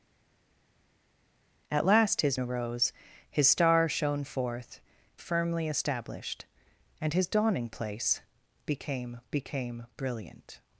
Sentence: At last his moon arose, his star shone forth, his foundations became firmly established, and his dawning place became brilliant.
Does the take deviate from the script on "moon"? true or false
true